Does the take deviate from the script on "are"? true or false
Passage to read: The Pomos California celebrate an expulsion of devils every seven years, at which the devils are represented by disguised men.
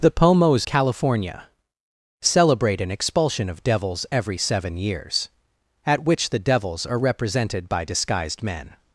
false